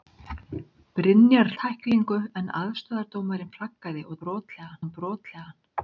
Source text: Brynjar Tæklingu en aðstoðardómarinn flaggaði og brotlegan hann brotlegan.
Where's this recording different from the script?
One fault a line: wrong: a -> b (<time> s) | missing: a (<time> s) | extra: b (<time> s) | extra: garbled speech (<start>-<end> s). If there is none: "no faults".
no faults